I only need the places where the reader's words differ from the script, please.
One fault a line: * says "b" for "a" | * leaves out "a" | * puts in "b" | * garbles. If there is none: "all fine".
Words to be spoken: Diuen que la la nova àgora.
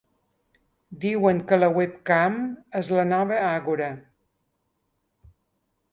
* puts in "webcam és"